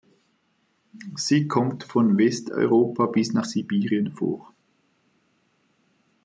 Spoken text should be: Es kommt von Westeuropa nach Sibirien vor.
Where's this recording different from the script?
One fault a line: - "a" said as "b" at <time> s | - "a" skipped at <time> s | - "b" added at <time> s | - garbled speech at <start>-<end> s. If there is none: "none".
- "Es" said as "Sie" at 1.1 s
- "bis" added at 3.0 s